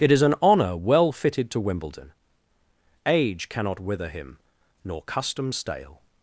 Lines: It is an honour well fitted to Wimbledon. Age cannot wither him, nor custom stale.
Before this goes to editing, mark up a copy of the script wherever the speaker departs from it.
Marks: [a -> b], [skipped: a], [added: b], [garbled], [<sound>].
It is an honour well fitted to Wimbledon. Age cannot wither him, nor custom stale.